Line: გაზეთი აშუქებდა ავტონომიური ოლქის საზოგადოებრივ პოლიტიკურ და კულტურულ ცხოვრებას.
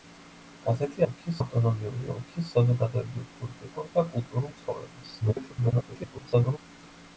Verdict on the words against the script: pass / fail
fail